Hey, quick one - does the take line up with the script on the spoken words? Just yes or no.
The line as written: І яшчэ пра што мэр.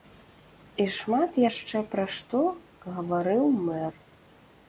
no